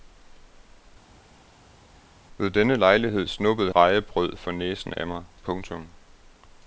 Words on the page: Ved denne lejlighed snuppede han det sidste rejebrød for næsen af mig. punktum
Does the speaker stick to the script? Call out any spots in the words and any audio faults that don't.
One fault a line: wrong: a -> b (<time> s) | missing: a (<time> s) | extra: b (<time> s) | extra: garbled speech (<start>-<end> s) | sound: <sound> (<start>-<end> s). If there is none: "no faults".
missing: han det sidste (3.7 s)